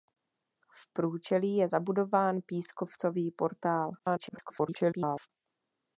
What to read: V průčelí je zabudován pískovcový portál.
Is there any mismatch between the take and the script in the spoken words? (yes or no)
yes